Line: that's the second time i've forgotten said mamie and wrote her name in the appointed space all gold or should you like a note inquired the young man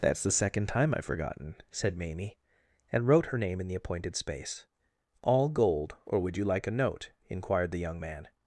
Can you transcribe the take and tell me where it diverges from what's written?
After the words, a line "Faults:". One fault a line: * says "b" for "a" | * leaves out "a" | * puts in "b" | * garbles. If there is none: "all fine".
that's the second time i've forgotten said mamie and wrote her name in the appointed space all gold or would you like a note inquired the young man
Faults:
* says "would" for "should"